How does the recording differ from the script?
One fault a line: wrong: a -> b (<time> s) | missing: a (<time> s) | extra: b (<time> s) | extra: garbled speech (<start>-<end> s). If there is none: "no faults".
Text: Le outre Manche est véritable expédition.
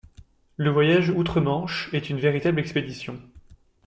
extra: voyage (0.7 s)
extra: une (2.1 s)